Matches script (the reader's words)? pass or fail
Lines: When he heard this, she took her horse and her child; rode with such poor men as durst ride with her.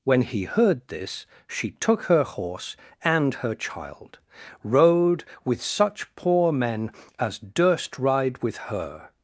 pass